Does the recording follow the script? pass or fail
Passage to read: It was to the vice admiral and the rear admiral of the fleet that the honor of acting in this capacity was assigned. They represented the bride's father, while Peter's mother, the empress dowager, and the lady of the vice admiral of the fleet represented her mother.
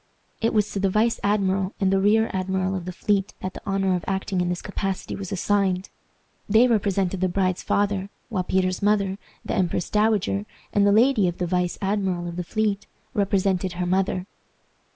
pass